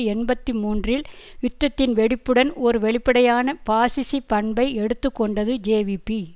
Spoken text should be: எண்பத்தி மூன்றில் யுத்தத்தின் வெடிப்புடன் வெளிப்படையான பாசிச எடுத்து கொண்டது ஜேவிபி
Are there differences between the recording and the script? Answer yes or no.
yes